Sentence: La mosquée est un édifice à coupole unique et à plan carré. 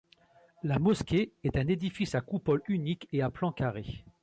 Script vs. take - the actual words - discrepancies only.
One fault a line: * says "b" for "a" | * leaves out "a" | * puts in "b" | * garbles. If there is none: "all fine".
all fine